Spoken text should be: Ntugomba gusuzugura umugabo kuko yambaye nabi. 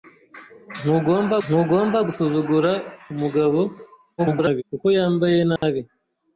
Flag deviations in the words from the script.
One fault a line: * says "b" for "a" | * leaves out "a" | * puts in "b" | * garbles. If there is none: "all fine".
* puts in "ntugomba"
* garbles